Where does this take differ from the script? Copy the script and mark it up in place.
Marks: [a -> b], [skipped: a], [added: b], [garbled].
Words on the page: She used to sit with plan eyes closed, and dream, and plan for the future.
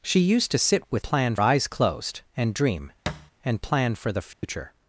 She used to sit with plan eyes closed, and dream, and plan for the future.